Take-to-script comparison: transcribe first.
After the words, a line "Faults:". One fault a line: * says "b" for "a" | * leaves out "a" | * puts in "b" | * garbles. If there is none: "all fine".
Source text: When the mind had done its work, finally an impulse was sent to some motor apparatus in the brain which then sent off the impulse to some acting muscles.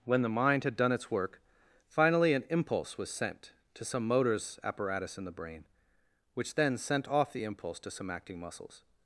When the mind had done its work, finally an impulse was sent to some motors apparatus in the brain which then sent off the impulse to some acting muscles.
Faults:
* says "motors" for "motor"